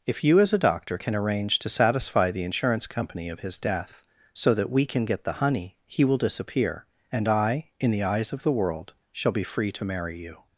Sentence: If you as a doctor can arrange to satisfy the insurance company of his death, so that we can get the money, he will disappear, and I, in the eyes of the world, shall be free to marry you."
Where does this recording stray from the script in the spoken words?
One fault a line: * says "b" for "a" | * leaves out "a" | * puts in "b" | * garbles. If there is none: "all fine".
* says "honey" for "money"